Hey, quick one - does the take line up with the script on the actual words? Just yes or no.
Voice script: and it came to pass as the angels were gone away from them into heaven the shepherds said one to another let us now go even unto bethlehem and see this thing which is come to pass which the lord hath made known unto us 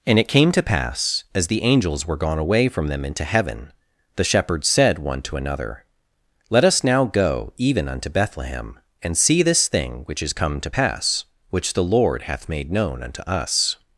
yes